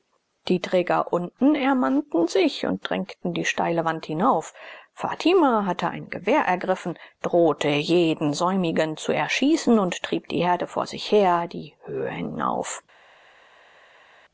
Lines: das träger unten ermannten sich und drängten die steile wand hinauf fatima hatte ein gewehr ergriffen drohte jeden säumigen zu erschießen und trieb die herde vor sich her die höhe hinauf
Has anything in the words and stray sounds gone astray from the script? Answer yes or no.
yes